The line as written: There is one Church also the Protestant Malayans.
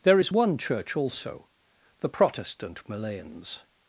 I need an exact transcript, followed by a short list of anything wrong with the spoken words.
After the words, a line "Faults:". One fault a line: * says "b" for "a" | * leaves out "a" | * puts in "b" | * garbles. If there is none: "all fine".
There is one Church also the Protestant Malayans.
Faults:
all fine